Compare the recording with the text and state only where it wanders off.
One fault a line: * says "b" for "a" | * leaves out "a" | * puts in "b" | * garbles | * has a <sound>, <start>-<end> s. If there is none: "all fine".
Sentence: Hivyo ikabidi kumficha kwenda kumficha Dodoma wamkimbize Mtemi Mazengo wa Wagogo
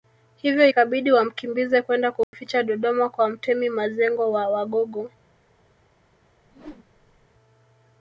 * says "wamkimbize" for "kumficha"
* has a dropout, 2.2-2.3 s
* says "kwa" for "wamkimbize"
* has a whoosh, 6.4-7.3 s